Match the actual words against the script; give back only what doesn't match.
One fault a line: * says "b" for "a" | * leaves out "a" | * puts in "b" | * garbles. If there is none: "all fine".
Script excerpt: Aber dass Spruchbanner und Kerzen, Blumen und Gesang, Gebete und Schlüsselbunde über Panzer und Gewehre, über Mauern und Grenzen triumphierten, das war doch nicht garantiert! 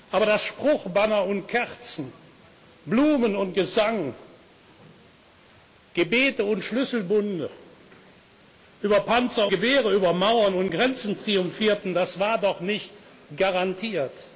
* leaves out "und"